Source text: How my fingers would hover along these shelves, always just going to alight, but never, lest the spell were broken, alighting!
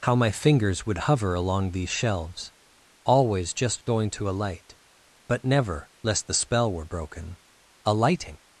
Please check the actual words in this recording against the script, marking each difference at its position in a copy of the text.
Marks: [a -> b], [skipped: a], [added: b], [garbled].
How my fingers would hover along these shelves, always just going to alight, but never, lest the spell were broken, alighting!